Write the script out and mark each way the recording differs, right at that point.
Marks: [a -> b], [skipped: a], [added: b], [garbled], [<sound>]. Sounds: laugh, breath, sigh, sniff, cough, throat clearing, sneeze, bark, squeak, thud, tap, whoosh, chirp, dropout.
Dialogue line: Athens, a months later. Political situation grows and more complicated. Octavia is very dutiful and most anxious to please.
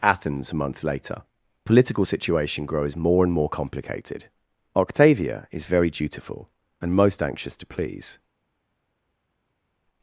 Athens, a [months -> month] later. Political situation grows [added: more] and more complicated. Octavia is very dutiful and most anxious to please.